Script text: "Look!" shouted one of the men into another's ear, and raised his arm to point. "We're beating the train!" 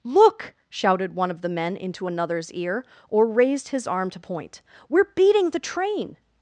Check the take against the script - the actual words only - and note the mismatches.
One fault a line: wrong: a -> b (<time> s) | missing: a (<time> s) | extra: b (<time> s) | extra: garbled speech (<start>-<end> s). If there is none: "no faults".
wrong: and -> or (3.1 s)